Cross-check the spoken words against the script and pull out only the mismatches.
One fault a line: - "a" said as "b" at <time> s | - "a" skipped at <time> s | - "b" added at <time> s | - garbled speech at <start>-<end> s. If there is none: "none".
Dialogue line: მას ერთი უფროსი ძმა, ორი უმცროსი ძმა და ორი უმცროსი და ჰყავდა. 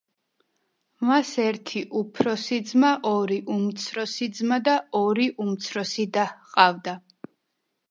none